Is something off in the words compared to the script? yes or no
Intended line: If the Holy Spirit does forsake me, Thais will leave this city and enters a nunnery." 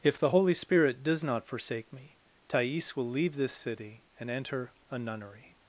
yes